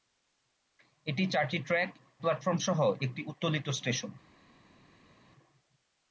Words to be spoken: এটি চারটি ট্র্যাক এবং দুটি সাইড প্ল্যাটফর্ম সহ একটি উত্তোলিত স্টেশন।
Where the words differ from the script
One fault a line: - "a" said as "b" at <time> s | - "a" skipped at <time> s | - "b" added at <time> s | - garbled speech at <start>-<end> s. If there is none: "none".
- "এবং দুটি সাইড" skipped at 1.9 s